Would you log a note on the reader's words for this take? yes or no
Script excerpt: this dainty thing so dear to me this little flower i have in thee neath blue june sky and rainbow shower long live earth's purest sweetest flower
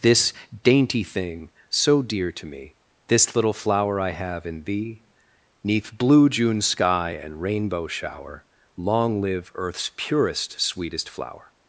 no